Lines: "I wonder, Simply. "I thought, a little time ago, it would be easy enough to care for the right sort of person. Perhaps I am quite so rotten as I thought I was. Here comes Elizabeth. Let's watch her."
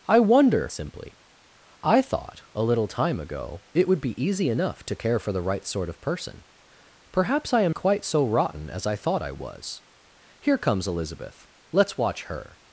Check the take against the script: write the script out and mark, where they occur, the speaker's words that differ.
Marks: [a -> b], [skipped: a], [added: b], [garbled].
"I wonder, Simply. "I thought, a little time ago, it would be easy enough to care for the right sort of person. Perhaps I am quite so rotten as I thought I was. Here comes Elizabeth. Let's watch her."